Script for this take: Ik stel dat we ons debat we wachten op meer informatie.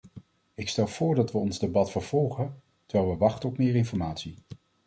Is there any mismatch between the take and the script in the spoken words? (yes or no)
yes